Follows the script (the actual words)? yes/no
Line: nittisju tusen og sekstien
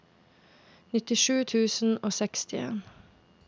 yes